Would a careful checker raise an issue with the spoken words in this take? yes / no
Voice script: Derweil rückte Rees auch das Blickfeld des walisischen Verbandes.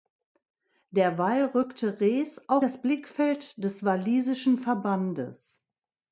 no